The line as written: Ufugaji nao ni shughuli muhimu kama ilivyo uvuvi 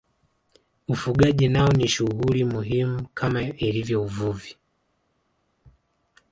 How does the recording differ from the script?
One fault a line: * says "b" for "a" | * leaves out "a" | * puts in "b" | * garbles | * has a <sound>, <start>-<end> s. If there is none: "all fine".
all fine